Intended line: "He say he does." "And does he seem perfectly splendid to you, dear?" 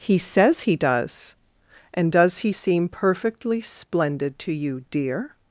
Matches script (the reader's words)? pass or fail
fail